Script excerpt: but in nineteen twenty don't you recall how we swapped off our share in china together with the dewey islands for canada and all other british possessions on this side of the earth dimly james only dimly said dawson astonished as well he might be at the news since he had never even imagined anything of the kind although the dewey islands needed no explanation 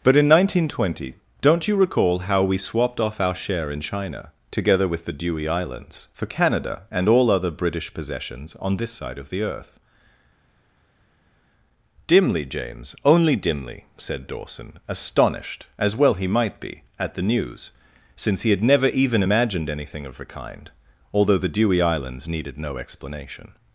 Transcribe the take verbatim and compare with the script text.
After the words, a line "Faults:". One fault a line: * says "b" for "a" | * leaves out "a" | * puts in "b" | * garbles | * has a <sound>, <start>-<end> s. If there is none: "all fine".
but in nineteen twenty don't you recall how we swapped off our share in china together with the dewey islands for canada and all other british possessions on this side of the earth dimly james only dimly said dawson astonished as well he might be at the news since he had never even imagined anything of the kind although the dewey islands needed no explanation
Faults:
all fine